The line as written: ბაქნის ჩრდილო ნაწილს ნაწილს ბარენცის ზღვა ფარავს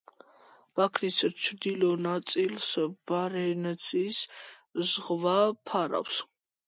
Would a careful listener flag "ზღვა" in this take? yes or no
no